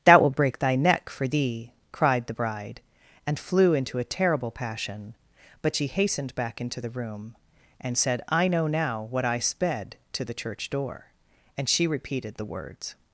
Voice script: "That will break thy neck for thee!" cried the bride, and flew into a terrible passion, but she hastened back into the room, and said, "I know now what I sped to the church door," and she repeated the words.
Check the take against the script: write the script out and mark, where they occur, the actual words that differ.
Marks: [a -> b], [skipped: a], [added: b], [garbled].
"That will break thy neck for thee!" cried the bride, and flew into a terrible passion, but she hastened back into the room, and said, "I know now what I sped to the church door," and she repeated the words.